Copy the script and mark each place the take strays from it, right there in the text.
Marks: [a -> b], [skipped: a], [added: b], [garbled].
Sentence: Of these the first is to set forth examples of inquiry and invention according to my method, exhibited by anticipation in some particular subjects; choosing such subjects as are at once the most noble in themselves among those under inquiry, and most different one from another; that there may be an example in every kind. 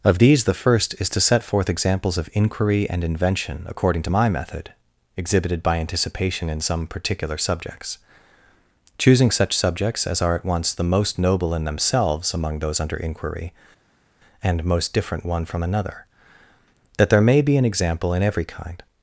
Of these the first is to set forth examples of inquiry and invention according to my method, exhibited by anticipation in some particular subjects; choosing such subjects as are at once the most noble in themselves among those under inquiry, and most different one from another; that there may be an example in every kind.